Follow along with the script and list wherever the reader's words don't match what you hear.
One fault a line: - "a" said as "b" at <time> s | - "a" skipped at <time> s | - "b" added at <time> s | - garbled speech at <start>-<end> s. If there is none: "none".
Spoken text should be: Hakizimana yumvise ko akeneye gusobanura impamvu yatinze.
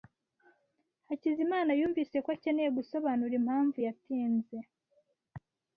none